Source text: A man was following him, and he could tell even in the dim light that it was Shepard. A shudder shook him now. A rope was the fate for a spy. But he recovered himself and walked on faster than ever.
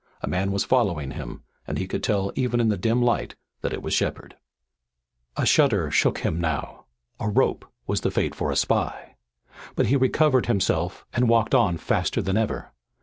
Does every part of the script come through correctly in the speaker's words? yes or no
yes